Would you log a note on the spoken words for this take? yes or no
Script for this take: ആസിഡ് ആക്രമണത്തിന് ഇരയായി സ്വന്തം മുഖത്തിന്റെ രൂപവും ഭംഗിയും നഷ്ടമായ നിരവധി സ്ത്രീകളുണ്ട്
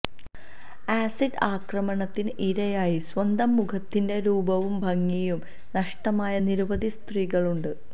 no